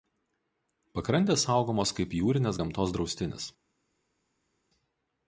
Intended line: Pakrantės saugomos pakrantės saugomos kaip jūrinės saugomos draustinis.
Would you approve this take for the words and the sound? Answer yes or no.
no